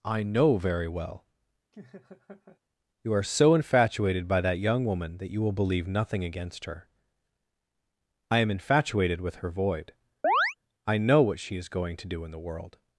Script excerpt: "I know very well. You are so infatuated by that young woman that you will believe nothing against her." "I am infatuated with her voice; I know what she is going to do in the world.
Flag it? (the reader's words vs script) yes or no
yes